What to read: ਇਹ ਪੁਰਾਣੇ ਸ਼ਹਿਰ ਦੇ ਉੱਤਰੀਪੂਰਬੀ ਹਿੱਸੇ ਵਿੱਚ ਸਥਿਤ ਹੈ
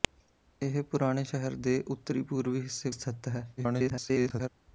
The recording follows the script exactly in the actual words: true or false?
false